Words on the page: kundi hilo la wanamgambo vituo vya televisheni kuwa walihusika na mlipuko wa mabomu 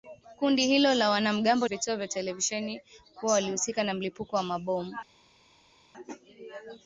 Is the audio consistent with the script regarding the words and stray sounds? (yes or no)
yes